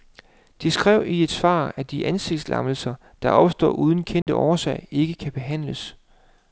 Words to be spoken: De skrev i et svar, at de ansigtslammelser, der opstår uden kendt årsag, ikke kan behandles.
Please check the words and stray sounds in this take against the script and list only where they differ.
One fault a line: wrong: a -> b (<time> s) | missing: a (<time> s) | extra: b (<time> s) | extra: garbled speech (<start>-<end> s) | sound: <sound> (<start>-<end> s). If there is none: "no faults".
sound: dropout (4.2-4.3 s)